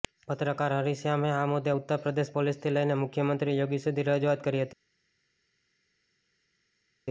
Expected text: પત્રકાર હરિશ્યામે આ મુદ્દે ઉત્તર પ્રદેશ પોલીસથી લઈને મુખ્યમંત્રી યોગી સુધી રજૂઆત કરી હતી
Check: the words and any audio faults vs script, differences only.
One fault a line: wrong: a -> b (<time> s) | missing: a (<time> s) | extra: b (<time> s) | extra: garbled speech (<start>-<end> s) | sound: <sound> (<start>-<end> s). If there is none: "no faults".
no faults